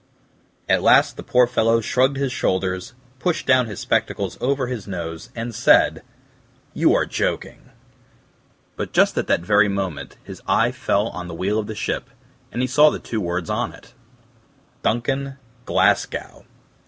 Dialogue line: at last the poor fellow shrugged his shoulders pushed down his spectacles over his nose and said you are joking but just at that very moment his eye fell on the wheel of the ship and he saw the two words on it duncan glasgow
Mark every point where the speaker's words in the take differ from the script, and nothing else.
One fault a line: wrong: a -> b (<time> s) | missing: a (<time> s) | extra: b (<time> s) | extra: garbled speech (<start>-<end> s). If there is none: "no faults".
no faults